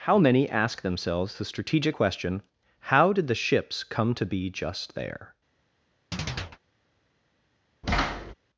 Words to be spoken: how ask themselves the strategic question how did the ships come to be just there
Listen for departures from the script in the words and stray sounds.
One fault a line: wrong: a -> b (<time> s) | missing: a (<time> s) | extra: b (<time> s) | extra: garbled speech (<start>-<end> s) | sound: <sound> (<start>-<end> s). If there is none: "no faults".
extra: many (0.2 s)
sound: chirp (6.1-6.6 s)
sound: thud (7.8-8.3 s)